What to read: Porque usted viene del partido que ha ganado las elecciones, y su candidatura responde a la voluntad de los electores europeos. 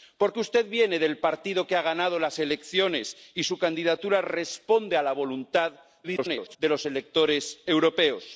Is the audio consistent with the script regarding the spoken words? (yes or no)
no